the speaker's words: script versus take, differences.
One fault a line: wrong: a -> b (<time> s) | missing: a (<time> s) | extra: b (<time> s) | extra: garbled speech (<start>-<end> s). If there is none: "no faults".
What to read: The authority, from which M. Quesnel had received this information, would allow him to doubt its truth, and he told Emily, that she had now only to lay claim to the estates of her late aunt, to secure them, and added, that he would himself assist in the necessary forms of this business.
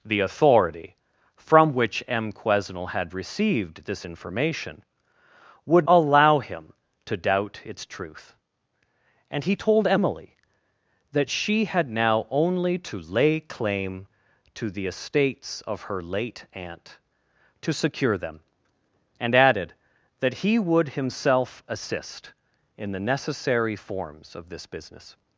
no faults